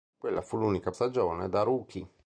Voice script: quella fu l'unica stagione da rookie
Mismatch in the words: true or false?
false